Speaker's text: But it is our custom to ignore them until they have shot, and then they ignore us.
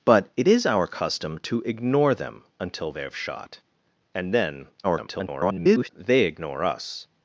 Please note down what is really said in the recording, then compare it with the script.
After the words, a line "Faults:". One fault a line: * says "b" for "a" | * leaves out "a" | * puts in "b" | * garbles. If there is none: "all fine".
But it is our custom to ignore them until they have shot, and then [garbled] they ignore us.
Faults:
* garbles